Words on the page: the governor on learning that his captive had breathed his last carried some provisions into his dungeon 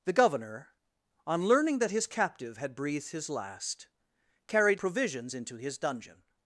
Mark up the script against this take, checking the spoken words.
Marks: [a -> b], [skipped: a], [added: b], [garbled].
the governor on learning that his captive had breathed his last carried [skipped: some] provisions into his dungeon